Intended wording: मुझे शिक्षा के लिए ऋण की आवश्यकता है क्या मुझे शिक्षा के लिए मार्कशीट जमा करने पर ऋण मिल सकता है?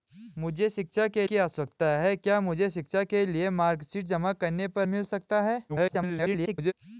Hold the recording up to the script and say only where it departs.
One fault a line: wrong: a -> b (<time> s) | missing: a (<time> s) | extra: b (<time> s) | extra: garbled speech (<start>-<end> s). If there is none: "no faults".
missing: लिए ऋण (1.3 s)
missing: ऋण (4.9 s)
extra: garbled speech (5.7-6.7 s)